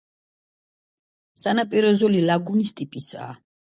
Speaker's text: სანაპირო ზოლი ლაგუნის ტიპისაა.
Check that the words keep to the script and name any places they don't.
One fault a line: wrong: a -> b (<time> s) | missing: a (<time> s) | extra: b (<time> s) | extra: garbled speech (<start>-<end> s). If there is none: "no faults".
no faults